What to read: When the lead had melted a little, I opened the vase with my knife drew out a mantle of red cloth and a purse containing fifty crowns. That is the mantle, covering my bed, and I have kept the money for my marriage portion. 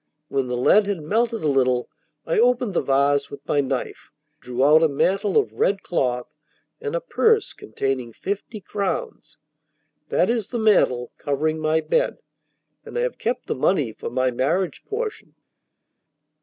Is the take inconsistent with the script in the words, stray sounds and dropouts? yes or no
no